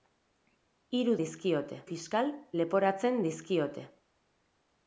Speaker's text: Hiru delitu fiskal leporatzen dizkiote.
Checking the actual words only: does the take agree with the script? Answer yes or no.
no